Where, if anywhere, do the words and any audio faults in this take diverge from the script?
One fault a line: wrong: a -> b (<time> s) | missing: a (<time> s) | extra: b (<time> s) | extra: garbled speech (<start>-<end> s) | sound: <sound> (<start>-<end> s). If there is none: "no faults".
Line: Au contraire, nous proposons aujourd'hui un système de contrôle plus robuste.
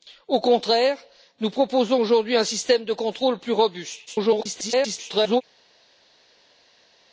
extra: garbled speech (4.1-5.4 s)